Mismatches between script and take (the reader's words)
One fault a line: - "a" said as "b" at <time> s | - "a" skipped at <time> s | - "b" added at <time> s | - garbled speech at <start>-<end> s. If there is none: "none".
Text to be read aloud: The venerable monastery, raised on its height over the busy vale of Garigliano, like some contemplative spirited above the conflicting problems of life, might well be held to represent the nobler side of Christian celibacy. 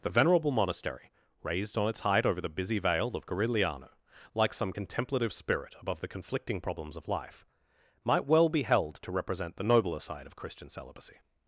- "spirited" said as "spirit" at 5.3 s